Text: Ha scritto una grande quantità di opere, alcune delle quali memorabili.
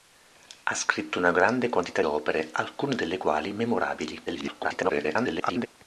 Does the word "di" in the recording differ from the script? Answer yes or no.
yes